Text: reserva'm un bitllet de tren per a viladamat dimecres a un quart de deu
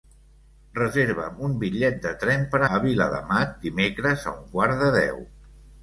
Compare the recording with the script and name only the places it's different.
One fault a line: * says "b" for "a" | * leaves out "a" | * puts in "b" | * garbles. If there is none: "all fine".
all fine